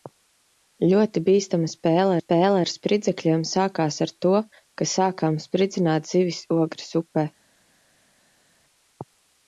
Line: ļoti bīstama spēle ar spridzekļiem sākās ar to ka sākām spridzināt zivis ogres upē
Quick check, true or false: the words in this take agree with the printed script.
false